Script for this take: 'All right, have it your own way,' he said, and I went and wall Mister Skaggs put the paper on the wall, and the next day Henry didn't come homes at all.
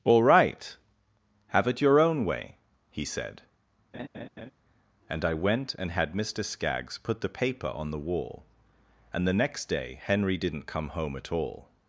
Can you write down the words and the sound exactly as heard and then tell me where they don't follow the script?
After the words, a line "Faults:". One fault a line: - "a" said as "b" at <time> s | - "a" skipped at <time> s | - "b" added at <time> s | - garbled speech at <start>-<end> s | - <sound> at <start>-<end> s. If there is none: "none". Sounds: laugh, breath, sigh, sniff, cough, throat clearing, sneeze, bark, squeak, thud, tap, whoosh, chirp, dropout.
'All right, have it your own way,' he said, and I went and had Mister Skaggs put the paper on the wall, and the next day Henry didn't come home at all.
Faults:
- laugh at 3.9-4.5 s
- "wall" said as "had" at 5.9 s
- "homes" said as "home" at 10.9 s